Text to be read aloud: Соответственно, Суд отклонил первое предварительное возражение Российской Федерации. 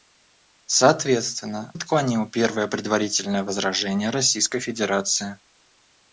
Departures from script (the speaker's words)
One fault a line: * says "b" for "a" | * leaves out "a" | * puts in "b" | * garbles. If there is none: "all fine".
* leaves out "Суд"